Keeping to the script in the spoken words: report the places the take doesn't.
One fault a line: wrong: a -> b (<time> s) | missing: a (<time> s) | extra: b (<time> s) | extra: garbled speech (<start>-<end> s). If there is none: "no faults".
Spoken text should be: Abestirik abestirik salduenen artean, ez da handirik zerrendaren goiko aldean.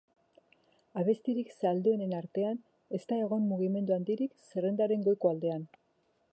missing: abestirik (1.5 s)
extra: egon mugimendu (3.2 s)